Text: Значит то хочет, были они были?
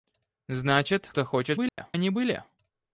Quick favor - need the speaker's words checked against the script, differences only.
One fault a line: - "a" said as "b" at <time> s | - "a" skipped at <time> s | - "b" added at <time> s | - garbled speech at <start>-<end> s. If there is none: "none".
none